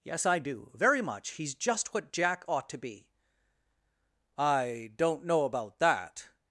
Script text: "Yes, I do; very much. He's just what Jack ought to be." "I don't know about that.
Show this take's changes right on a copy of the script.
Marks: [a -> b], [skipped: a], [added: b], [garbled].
"Yes, I do; very much. He's just what Jack ought to be." "I don't know about that.